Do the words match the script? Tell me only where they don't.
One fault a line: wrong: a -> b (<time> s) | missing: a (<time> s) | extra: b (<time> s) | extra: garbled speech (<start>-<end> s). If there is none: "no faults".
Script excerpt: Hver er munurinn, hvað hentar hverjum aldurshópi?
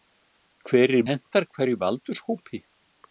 missing: munurinn hvað (1.0 s)